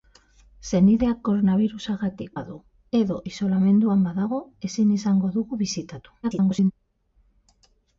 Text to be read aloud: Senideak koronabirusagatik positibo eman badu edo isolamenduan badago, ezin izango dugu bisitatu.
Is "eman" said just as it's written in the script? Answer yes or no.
no